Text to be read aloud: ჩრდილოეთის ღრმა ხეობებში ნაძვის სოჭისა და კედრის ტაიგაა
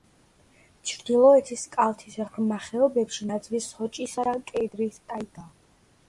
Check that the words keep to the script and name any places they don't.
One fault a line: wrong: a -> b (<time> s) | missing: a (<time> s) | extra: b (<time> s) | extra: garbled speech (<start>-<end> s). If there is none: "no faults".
extra: კალთის (1.8 s)